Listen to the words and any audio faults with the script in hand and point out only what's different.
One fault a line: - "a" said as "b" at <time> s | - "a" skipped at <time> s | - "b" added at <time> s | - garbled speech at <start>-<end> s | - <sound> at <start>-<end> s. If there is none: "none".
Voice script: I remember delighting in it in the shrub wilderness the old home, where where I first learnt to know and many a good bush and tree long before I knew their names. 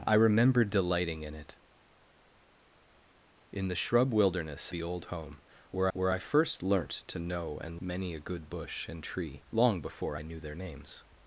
none